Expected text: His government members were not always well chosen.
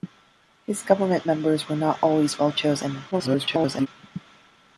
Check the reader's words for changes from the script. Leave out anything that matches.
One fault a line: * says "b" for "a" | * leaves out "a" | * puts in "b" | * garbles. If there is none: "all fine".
* garbles